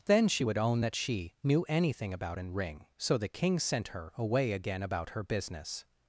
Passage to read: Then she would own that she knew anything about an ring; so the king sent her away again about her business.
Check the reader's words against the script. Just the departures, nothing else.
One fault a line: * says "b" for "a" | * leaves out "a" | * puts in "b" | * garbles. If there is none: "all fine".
all fine